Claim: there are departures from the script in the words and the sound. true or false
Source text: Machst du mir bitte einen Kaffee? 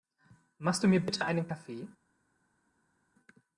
false